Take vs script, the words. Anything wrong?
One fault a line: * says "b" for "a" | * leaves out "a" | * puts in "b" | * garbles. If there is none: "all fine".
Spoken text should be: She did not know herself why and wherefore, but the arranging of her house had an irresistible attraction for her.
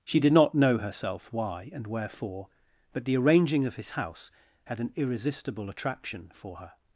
* says "his" for "her"